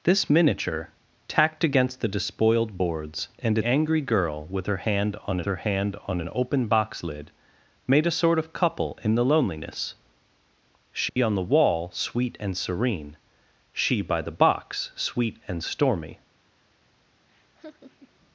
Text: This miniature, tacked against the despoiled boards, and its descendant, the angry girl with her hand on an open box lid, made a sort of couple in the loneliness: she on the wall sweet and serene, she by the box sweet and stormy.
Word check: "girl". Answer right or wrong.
wrong